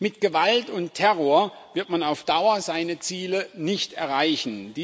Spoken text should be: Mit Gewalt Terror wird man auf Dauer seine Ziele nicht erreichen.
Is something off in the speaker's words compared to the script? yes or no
yes